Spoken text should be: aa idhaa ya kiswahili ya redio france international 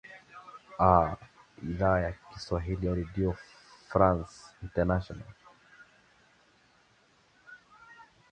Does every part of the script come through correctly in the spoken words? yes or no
yes